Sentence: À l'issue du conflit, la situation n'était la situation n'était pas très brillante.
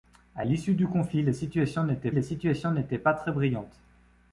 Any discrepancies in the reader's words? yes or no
no